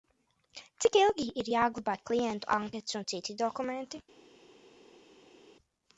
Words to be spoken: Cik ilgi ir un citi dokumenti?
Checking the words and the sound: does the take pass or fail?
fail